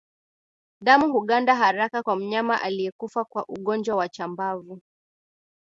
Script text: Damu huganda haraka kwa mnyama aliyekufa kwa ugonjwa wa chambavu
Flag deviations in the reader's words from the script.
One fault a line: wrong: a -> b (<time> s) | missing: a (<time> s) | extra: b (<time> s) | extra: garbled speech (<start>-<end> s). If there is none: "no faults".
no faults